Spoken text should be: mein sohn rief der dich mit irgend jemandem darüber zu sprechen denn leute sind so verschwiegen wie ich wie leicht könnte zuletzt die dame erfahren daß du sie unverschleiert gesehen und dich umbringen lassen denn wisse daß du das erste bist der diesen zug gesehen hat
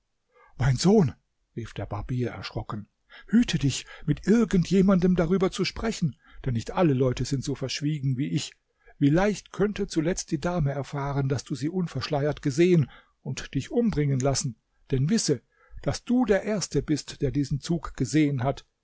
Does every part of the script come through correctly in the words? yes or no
no